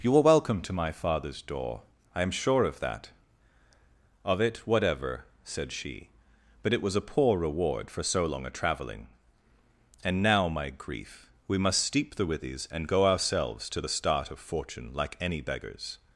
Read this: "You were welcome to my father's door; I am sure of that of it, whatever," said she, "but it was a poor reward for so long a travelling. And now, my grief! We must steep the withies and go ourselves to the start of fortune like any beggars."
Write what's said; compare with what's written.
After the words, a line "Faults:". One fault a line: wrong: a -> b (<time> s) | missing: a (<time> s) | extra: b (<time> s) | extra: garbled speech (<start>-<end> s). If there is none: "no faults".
"You are welcome to my father's door; I am sure of that of it, whatever," said she, "but it was a poor reward for so long a travelling. And now, my grief! We must steep the withies and go ourselves to the start of fortune like any beggars."
Faults:
wrong: were -> are (0.2 s)